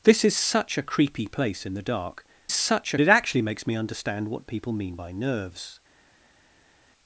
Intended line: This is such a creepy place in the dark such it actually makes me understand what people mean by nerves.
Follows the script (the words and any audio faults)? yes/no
yes